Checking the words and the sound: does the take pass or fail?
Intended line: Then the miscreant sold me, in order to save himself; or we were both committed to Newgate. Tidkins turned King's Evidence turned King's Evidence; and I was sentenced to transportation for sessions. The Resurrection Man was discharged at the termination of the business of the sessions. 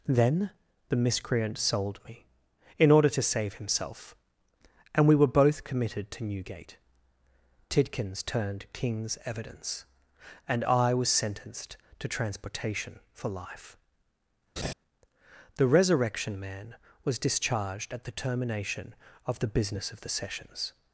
fail